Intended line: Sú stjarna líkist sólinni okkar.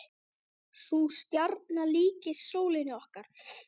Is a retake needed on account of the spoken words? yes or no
no